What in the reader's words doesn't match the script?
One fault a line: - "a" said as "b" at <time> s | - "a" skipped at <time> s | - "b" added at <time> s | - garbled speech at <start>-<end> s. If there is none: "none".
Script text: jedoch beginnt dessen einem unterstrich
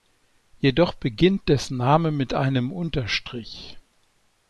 - "name mit" added at 1.7 s